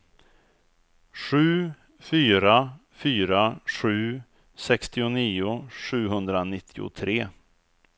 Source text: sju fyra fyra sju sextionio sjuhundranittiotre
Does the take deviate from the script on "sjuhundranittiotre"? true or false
false